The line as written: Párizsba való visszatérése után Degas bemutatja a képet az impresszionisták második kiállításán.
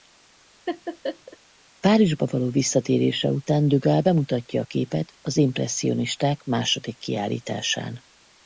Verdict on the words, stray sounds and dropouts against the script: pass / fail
fail